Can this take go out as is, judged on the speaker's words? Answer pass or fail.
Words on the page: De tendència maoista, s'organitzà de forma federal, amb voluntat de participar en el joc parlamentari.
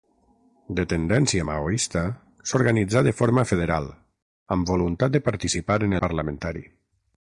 fail